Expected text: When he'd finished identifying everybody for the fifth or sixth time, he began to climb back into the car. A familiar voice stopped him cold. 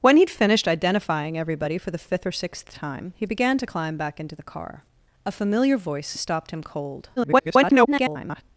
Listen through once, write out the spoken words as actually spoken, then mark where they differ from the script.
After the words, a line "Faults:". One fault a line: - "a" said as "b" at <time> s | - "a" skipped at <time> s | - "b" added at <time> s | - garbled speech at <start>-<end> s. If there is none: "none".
When he'd finished identifying everybody for the fifth or sixth time, he began to climb back into the car. A familiar voice stopped him cold. [garbled]
Faults:
- garbled speech at 7.2-8.4 s